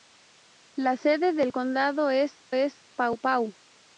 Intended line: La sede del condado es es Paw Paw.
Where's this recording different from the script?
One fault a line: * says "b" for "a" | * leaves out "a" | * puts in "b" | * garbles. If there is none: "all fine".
all fine